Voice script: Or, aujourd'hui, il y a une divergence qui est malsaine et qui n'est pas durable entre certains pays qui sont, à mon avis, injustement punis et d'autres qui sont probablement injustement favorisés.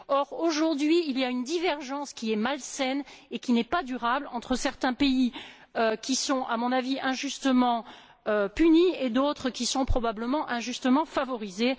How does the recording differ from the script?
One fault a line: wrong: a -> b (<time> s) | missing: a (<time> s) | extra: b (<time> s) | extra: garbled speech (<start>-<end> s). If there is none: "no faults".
no faults